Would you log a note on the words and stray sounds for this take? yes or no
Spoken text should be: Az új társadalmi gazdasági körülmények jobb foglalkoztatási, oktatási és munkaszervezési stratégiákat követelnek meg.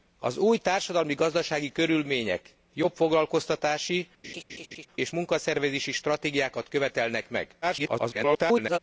yes